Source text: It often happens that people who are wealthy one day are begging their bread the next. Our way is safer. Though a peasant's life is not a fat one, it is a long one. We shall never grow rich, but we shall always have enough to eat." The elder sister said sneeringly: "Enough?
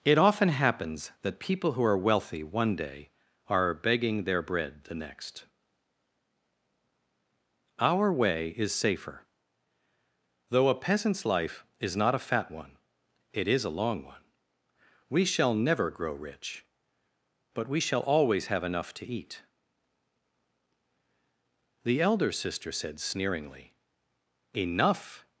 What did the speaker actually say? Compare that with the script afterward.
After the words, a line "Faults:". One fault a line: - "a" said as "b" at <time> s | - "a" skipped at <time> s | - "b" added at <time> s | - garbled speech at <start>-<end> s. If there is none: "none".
It often happens that people who are wealthy one day are begging their bread the next. Our way is safer. Though a peasant's life is not a fat one, it is a long one. We shall never grow rich, but we shall always have enough to eat." The elder sister said sneeringly: "Enough?
Faults:
none